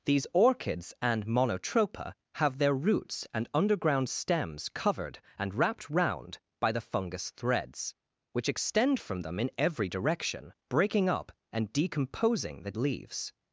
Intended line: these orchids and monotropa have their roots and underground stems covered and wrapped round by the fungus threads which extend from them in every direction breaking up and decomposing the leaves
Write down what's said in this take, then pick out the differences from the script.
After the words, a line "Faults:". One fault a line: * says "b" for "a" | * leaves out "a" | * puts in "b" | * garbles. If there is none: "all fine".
these orchids and monotropa have their roots and underground stems covered and wrapped round by the fungus threads which extend from them in every direction breaking up and decomposing the leaves
Faults:
all fine